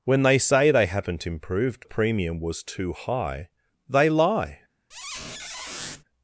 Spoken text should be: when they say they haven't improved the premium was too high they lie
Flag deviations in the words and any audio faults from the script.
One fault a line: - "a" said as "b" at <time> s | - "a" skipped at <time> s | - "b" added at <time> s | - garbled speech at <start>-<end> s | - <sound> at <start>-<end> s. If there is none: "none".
- squeak at 4.9-6.0 s